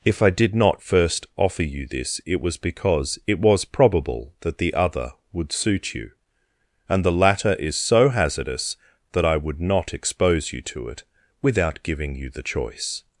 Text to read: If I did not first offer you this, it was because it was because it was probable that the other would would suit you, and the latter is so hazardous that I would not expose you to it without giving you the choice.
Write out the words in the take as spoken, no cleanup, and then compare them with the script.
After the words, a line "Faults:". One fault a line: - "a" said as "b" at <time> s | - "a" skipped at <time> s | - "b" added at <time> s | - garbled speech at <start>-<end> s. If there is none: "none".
If I did not first offer you this, it was because it was probable that the other would suit you, and the latter is so hazardous that I would not expose you to it without giving you the choice.
Faults:
- "because it was" skipped at 3.6 s
- "would" skipped at 5.5 s